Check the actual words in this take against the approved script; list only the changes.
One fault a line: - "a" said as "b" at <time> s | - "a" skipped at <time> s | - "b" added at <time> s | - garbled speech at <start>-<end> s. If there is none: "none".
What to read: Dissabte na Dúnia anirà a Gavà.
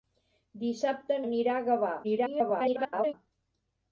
- "na Dúnia" skipped at 1.2 s
- garbled speech at 2.0-3.1 s